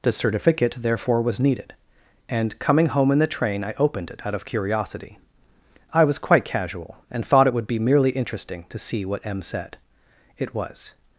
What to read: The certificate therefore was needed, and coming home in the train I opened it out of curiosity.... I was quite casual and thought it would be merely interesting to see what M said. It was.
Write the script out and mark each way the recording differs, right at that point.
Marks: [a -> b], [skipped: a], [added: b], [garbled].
The certificate therefore was needed, and coming home in the train I opened it out of curiosity.... I was quite casual and thought it would be merely interesting to see what M said. It was.